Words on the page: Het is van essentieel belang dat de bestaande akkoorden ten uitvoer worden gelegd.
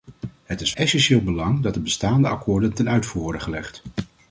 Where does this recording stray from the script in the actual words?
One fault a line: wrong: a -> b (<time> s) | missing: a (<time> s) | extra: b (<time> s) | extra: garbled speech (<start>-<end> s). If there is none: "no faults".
missing: van (0.7 s)